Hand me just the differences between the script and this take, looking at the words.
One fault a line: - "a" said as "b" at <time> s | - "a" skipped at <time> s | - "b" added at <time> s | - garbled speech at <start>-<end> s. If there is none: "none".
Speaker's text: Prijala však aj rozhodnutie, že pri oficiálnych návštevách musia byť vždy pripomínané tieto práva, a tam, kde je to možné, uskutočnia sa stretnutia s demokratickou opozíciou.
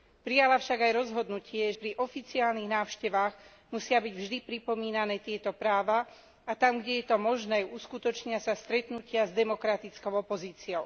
- "že" skipped at 1.7 s